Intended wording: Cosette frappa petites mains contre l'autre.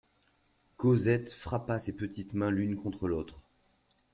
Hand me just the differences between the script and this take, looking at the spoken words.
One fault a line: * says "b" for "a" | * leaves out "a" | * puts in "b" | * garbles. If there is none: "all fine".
* puts in "ses"
* puts in "l'une"